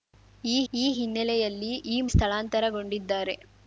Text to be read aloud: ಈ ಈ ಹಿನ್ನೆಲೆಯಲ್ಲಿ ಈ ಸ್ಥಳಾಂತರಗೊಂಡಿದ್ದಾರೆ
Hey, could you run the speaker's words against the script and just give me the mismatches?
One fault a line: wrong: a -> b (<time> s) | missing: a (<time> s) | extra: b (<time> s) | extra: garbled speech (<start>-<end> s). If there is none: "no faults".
no faults